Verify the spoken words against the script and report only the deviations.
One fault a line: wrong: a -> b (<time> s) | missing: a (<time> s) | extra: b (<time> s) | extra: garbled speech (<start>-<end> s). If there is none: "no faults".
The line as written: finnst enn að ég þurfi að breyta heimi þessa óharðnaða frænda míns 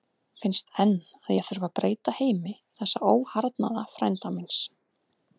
no faults